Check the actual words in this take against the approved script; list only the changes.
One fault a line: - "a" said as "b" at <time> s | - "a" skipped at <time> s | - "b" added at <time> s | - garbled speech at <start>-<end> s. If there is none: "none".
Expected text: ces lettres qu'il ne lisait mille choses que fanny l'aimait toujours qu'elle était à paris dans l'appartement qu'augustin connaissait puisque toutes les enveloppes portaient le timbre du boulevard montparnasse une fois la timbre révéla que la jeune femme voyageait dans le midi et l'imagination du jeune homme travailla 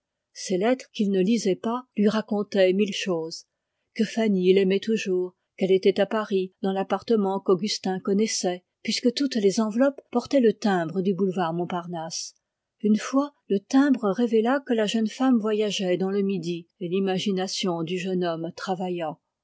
- "pas lui racontaient" added at 1.6 s
- "la" said as "le" at 13.5 s